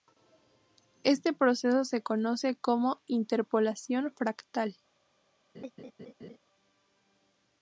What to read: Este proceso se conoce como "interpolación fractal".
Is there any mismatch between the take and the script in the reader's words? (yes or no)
no